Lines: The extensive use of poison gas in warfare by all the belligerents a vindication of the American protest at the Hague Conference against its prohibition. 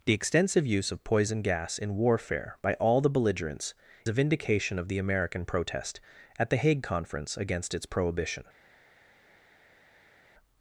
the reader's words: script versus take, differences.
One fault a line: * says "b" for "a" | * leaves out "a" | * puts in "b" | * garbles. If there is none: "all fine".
all fine